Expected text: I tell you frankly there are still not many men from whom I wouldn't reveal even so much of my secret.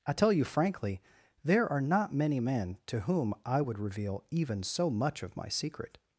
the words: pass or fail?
fail